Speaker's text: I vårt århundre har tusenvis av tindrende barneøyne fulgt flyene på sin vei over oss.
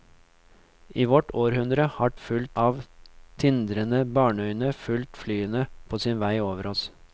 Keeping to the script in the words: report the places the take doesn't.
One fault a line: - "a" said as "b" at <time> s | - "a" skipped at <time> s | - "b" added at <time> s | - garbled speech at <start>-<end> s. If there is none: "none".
- "tusenvis" said as "fulgt" at 2.1 s